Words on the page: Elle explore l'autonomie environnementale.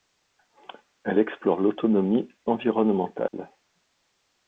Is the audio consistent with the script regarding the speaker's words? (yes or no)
yes